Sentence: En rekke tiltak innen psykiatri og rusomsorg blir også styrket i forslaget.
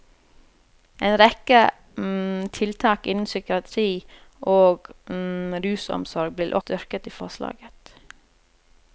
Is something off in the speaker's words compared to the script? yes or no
yes